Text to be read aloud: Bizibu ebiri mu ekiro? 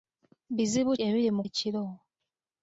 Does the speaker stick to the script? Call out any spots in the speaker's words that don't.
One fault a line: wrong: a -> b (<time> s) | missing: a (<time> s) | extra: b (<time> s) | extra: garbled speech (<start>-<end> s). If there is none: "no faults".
no faults